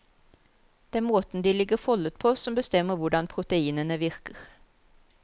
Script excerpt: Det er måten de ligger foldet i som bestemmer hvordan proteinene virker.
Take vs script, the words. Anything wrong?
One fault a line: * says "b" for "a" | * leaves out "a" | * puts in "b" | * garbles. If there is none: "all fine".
* says "på" for "i"